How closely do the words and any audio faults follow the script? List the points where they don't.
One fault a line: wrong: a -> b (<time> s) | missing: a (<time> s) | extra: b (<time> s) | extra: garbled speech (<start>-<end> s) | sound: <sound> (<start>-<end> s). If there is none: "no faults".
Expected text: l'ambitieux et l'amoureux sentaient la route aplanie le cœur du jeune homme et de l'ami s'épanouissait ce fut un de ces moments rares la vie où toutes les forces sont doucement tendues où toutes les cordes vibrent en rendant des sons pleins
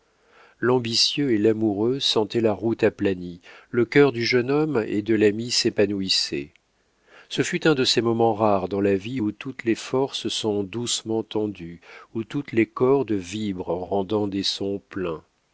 extra: dans (8.7 s)